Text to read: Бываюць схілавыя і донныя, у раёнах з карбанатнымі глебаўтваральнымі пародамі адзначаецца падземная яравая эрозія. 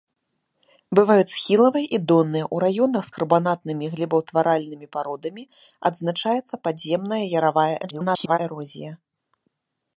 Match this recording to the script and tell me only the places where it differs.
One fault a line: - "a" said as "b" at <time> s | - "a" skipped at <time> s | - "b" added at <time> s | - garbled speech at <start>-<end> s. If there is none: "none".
- garbled speech at 7.8-8.4 s